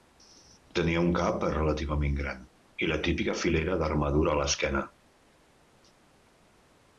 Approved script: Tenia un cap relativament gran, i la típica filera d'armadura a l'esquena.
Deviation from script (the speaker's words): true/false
false